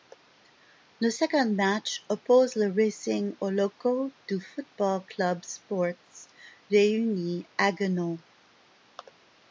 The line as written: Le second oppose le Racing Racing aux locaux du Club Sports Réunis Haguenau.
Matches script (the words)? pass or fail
fail